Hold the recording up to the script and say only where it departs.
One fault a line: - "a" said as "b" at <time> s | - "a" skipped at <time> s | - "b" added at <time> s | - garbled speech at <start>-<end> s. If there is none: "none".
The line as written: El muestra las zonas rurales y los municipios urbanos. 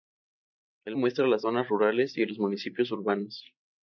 none